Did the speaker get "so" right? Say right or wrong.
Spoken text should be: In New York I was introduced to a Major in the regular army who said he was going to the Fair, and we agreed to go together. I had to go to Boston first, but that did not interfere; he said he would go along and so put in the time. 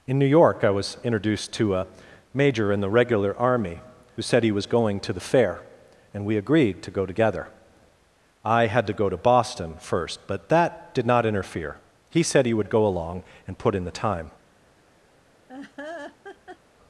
wrong